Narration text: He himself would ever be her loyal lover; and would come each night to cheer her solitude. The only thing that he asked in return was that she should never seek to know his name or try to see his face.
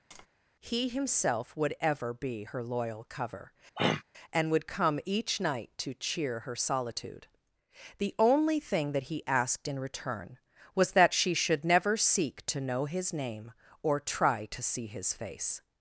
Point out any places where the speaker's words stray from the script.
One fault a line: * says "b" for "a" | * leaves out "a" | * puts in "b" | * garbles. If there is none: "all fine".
* says "cover" for "lover"